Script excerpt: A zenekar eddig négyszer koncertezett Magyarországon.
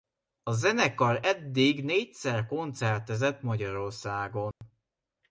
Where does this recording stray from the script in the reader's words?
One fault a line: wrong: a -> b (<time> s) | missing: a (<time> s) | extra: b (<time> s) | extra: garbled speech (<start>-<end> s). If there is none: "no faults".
no faults